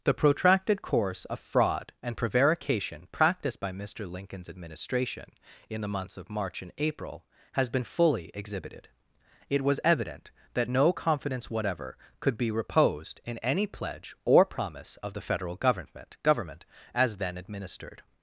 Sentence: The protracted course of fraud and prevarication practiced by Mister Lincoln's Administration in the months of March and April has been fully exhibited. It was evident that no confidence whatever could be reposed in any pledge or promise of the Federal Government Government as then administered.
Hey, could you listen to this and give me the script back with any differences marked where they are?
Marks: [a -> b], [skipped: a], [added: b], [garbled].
The protracted course of fraud and prevarication practiced by Mister Lincoln's Administration in the months of March and April has been fully exhibited. It was evident that no confidence whatever could be reposed in any pledge or promise of the Federal Government Government as then administered.